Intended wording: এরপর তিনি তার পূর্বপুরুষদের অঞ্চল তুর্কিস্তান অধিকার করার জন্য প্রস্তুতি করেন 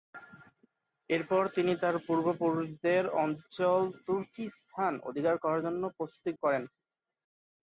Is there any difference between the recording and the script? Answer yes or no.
no